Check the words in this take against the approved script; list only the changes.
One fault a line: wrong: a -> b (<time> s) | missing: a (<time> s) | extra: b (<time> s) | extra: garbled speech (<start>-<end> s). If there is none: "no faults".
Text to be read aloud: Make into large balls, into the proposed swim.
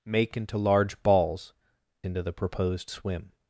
no faults